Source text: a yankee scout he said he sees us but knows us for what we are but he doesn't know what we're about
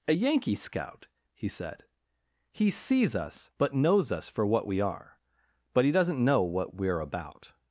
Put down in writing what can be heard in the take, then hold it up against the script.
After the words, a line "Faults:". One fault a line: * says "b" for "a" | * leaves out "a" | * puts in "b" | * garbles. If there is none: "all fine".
a yankee scout he said he sees us but knows us for what we are but he doesn't know what we're about
Faults:
all fine